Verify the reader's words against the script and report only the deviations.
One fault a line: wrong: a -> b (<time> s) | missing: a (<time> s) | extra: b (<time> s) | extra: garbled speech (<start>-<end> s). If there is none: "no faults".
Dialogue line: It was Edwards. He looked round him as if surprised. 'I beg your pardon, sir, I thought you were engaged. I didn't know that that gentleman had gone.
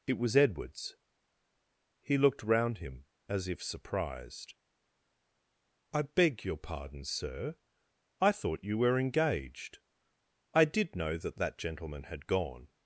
wrong: didn't -> did (10.7 s)